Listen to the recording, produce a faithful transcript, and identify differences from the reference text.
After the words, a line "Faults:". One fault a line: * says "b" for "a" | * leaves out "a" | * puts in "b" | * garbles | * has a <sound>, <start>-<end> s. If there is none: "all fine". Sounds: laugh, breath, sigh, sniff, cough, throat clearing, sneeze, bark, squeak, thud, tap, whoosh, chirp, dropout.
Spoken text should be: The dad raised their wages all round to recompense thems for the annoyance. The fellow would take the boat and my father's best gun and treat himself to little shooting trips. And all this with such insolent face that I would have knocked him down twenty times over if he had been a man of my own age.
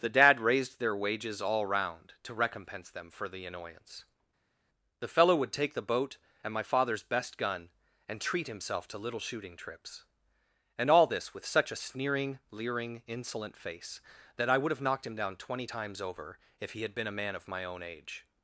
The dad raised their wages all round to recompense them for the annoyance. The fellow would take the boat and my father's best gun and treat himself to little shooting trips. And all this with such a sneering, leering, insolent face that I would have knocked him down twenty times over if he had been a man of my own age.
Faults:
* says "them" for "thems"
* puts in "a sneering leering"